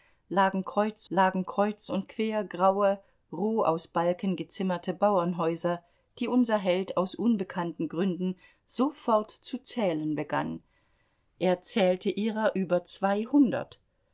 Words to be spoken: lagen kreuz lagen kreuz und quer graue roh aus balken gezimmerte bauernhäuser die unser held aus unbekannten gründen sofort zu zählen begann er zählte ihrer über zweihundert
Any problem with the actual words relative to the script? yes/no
no